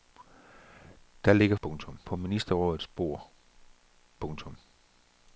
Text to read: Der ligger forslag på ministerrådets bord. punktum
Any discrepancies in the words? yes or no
yes